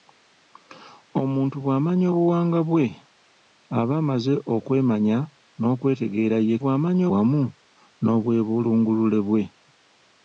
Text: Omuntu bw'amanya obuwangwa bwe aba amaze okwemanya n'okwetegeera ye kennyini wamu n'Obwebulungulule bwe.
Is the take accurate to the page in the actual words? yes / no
no